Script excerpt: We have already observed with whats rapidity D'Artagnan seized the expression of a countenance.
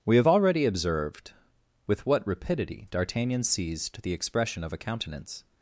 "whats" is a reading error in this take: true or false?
true